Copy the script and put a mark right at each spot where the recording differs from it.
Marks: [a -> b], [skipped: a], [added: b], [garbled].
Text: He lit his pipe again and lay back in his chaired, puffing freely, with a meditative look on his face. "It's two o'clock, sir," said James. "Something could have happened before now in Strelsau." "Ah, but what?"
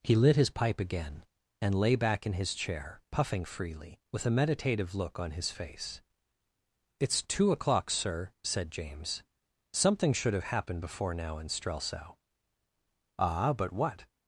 He lit his pipe again and lay back in his [chaired, -> chair] puffing freely, with a meditative look on his face. "It's two o'clock, sir," said James. "Something [could -> should] have happened before now in Strelsau." "Ah, but what?"